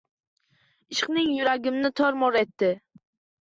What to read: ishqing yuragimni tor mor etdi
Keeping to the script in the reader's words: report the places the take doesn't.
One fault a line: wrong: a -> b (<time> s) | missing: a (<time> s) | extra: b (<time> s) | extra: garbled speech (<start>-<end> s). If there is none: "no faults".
no faults